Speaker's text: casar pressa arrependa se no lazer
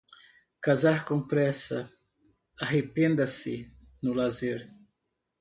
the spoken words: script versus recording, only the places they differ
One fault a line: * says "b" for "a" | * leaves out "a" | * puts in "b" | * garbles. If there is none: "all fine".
* puts in "com"